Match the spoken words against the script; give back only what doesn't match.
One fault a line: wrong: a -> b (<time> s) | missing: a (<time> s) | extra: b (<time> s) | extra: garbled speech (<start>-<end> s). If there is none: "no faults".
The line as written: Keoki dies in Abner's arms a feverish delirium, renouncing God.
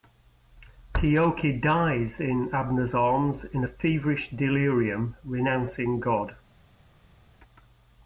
extra: in (3.5 s)